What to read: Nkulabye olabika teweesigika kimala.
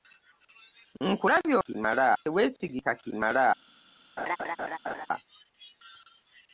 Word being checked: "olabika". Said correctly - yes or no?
no